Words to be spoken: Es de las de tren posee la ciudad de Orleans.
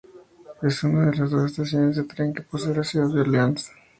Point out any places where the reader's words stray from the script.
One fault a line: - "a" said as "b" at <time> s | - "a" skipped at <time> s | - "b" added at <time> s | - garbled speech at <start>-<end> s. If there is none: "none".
- "una" added at 0.8 s
- "dos estaciones" added at 1.3 s
- "que" added at 2.3 s